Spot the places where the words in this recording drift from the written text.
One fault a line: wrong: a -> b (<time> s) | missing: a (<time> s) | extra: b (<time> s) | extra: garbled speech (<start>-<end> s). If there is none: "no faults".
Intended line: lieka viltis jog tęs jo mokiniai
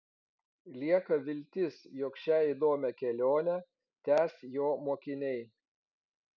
extra: šią įdomią kelionę (2.2 s)